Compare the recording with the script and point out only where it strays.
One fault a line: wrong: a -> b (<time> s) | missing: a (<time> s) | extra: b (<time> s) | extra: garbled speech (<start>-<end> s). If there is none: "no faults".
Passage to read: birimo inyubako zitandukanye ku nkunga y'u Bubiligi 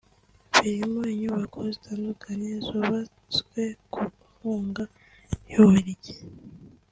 extra: zubatswe (2.7 s)